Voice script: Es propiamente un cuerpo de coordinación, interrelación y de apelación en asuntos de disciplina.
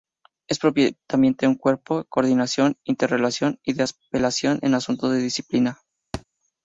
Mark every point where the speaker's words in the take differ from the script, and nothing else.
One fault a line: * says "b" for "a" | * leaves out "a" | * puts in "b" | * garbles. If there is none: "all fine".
all fine